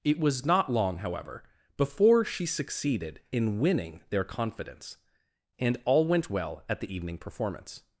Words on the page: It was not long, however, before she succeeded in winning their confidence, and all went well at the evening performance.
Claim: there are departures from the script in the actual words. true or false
false